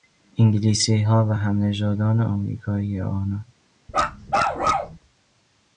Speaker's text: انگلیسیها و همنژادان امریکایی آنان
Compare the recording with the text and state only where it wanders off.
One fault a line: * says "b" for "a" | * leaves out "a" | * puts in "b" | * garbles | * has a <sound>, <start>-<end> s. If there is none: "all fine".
* has a bark, 3.9-5.0 s